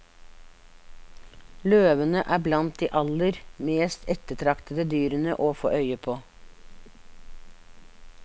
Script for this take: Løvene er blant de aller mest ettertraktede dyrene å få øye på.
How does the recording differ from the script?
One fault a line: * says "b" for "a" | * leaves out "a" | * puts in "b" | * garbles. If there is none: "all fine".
all fine